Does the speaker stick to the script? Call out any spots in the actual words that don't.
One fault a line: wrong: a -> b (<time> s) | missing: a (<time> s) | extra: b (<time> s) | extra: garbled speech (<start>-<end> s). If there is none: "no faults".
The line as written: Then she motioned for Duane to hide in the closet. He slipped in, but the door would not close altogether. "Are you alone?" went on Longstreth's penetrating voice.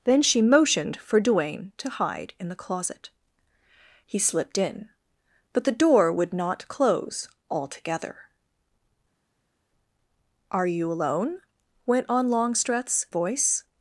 missing: penetrating (13.1 s)